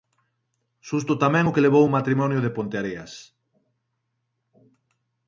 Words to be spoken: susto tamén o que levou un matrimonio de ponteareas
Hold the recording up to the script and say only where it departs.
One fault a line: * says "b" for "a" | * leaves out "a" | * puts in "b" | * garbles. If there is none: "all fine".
all fine